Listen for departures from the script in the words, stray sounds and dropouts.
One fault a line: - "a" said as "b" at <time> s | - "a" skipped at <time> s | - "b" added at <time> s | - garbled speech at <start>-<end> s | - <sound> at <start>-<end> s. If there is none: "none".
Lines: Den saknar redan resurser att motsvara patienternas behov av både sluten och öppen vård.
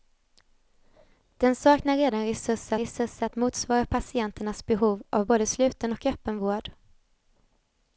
- "resurser" added at 2.8 s